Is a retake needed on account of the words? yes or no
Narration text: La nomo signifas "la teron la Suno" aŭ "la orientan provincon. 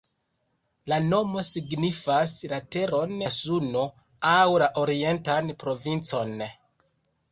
no